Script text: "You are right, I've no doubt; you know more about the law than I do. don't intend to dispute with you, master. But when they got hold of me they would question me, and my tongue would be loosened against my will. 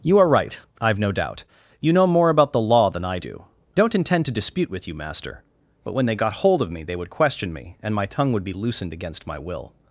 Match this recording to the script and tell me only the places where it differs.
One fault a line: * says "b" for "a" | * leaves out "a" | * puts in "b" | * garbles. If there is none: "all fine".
all fine